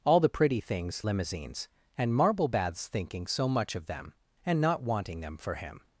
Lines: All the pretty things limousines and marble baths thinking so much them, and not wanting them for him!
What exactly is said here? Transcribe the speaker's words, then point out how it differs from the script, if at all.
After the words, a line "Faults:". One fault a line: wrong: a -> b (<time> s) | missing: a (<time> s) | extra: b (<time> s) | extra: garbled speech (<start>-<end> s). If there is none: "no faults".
All the pretty things limousines and marble baths thinking so much of them, and not wanting them for him!
Faults:
extra: of (3.7 s)